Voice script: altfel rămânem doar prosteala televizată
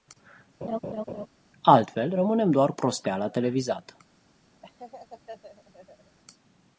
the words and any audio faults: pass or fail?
fail